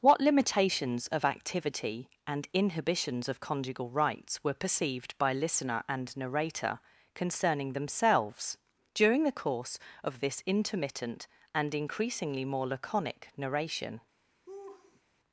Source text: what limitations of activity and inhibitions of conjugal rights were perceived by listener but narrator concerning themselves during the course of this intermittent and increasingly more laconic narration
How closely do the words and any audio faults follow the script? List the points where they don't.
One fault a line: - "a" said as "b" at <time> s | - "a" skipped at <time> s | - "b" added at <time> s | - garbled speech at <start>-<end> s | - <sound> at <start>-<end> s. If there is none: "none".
- "but" said as "and" at 5.9 s
- laugh at 14.5-15.0 s